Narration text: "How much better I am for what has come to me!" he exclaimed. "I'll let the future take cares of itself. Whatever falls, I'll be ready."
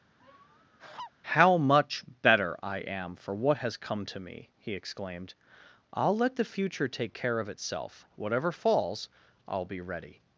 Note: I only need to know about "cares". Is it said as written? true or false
false